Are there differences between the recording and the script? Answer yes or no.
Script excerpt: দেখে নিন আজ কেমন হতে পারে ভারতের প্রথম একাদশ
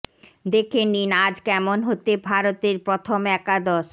yes